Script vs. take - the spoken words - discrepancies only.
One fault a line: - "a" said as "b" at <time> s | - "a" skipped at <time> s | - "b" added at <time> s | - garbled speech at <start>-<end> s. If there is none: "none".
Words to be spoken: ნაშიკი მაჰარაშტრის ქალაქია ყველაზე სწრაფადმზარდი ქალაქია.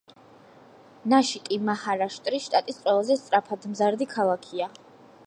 - "ქალაქია" said as "შტატის" at 2.5 s